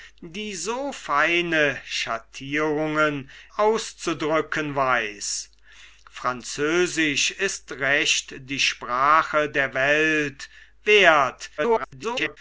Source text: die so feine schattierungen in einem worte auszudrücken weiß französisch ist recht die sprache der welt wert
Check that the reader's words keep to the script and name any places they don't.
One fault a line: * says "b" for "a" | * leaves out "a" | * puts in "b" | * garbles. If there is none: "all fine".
* leaves out "in einem worte"
* garbles